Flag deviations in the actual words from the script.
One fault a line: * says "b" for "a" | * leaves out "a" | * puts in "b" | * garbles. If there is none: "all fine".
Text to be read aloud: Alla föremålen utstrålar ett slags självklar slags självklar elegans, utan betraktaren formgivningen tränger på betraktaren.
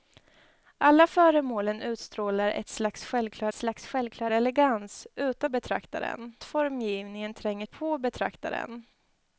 all fine